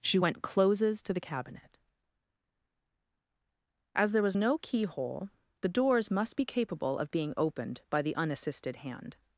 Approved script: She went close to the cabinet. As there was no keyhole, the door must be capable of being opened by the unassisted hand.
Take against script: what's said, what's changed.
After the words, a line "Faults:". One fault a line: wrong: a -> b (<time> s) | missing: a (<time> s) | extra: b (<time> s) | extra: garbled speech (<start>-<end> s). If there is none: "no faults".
She went closes to the cabinet. As there was no keyhole, the doors must be capable of being opened by the unassisted hand.
Faults:
wrong: close -> closes (0.4 s)
wrong: door -> doors (5.7 s)